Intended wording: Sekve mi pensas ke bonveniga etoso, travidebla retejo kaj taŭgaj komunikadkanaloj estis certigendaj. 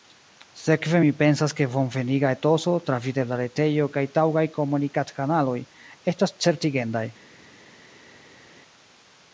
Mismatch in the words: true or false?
true